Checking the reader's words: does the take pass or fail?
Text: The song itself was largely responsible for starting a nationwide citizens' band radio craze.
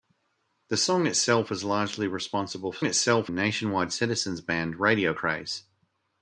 fail